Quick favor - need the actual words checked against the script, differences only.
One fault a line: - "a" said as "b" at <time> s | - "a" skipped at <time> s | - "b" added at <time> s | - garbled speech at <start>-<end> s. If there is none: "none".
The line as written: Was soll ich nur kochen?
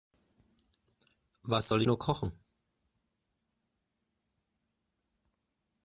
- "ich" skipped at 1.8 s